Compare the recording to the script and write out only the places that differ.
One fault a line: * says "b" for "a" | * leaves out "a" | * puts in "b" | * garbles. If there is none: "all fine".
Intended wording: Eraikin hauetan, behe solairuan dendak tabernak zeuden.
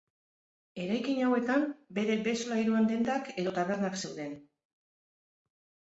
* puts in "bere"
* puts in "edo"